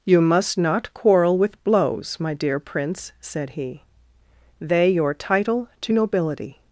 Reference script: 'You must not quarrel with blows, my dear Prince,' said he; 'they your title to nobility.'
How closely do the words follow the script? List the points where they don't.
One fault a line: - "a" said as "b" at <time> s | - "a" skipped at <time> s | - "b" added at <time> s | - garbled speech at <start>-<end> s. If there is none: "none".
none